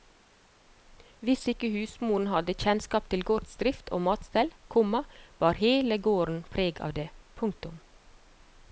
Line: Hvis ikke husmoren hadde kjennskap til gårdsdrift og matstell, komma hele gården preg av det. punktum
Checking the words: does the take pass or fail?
fail